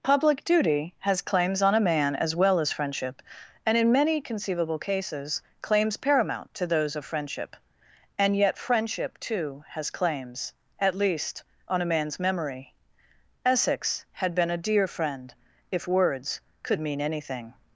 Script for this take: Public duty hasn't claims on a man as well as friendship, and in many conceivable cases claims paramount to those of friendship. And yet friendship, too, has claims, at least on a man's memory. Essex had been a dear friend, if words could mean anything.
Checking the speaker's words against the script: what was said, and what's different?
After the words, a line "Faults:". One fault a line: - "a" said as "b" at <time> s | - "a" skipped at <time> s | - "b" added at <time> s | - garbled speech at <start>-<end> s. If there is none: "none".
Public duty has claims on a man as well as friendship, and in many conceivable cases claims paramount to those of friendship. And yet friendship, too, has claims, at least on a man's memory. Essex had been a dear friend, if words could mean anything.
Faults:
- "hasn't" said as "has" at 1.0 s